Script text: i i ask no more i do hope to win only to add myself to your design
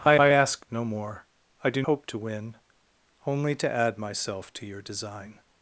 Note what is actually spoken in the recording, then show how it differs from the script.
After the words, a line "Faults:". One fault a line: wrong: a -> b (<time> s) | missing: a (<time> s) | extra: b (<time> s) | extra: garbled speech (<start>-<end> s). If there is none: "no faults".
i i ask no more i do hope to win only to add myself to your design
Faults:
no faults